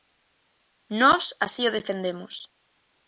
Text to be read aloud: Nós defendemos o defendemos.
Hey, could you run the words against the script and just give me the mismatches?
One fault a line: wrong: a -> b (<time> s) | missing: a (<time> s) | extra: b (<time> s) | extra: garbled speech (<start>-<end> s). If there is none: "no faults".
wrong: defendemos -> así (1.4 s)